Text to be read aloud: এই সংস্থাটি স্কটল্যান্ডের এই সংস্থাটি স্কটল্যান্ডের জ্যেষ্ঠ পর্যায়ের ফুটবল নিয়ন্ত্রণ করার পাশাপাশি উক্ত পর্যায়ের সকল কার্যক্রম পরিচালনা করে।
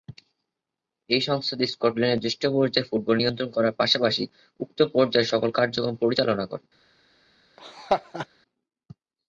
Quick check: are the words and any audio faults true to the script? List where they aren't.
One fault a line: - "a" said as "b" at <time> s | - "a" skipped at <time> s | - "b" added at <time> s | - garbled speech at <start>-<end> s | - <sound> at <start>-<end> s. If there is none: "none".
- "এই সংস্থাটি স্কটল্যান্ডের" skipped at 2.2 s
- laugh at 7.6-8.3 s